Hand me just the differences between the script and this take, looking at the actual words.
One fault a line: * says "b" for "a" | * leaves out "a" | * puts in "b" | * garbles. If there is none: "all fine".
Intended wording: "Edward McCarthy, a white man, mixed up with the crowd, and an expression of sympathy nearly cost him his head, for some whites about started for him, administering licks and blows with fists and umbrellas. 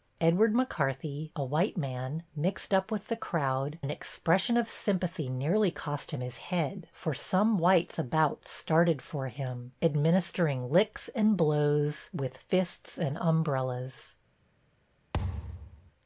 * leaves out "and"